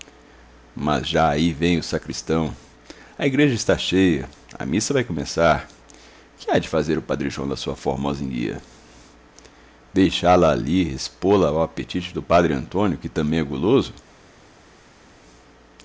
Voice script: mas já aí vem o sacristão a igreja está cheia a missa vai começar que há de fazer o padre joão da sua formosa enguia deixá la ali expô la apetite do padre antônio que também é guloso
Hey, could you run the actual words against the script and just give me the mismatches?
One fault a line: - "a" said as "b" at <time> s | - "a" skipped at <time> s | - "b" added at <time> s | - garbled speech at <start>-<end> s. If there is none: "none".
- "ao" added at 11.5 s